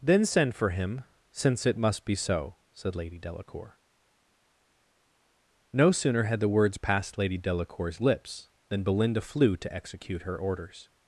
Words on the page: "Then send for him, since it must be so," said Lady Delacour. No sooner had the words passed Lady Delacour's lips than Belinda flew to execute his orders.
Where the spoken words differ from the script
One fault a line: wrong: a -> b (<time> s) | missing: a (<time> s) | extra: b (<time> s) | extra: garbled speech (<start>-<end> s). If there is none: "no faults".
wrong: his -> her (10.2 s)